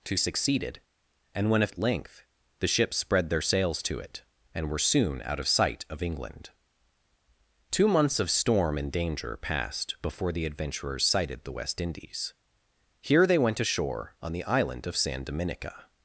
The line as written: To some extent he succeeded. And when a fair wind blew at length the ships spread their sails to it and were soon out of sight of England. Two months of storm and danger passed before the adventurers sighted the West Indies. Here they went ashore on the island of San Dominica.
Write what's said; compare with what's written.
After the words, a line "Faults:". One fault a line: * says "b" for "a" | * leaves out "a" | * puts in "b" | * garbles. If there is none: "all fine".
To succeeded. And when a at length the ships spread their sails to it and were soon out of sight of England. Two months of storm and danger passed before the adventurers sighted the West Indies. Here they went ashore on the island of San Dominica.
Faults:
* leaves out "some extent he"
* leaves out "fair wind blew"